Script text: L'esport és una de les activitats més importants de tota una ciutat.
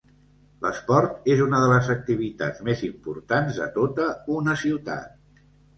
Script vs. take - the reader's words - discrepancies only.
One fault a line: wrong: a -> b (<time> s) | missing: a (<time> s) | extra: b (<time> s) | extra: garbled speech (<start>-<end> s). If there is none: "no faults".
no faults